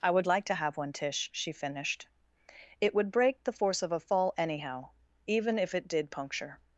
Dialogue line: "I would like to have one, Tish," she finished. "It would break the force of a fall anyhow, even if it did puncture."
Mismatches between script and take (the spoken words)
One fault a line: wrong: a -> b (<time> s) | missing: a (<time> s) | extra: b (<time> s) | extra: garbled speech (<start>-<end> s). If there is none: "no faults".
no faults